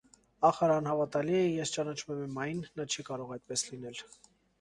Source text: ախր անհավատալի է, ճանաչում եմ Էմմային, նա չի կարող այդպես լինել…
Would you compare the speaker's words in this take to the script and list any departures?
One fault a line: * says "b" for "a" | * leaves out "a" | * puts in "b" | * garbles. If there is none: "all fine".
* puts in "ես"